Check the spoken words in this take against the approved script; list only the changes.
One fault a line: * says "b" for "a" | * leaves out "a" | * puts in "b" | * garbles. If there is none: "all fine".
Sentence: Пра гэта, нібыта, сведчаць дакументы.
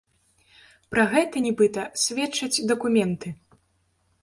all fine